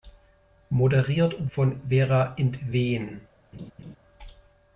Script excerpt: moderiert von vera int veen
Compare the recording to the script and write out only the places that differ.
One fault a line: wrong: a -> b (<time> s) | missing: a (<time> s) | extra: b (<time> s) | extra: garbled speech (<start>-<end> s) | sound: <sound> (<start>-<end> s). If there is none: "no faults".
sound: laugh (3.5-4.0 s)